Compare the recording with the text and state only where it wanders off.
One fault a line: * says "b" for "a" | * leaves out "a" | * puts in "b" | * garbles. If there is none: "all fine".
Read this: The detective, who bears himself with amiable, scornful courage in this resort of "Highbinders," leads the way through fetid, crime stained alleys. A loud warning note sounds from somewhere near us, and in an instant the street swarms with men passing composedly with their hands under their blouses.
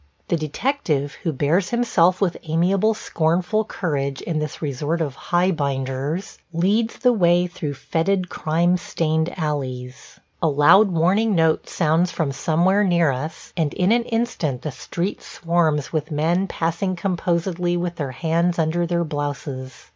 all fine